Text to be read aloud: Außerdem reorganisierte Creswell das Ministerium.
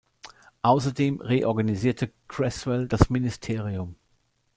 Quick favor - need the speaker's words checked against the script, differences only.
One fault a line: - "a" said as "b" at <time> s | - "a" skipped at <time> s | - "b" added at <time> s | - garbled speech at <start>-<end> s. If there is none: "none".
none